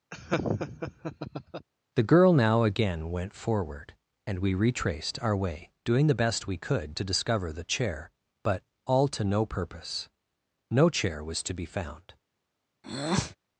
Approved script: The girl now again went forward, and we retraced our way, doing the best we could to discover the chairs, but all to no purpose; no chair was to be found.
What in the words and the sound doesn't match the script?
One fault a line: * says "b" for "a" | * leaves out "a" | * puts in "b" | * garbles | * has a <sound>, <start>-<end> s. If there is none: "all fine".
* has a laugh, 0.1-1.7 s
* says "chair" for "chairs"
* has a breath, 12.8-13.4 s